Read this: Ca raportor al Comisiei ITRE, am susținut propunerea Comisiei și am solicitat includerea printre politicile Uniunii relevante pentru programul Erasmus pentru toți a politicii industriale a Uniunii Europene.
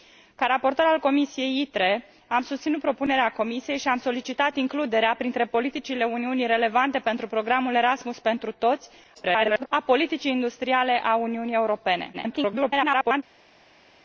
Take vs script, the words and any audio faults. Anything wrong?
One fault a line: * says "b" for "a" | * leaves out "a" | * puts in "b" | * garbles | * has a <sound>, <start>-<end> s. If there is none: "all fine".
* garbles
* garbles